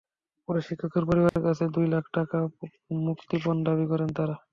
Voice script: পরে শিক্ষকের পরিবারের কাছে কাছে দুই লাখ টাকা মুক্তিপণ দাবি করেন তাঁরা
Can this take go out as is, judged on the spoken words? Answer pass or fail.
fail